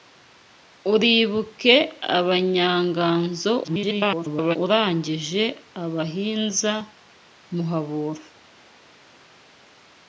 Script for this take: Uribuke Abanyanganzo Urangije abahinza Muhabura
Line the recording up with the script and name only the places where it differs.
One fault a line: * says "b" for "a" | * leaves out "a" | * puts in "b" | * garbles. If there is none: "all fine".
* garbles